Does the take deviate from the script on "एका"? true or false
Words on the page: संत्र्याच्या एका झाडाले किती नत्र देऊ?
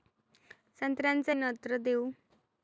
true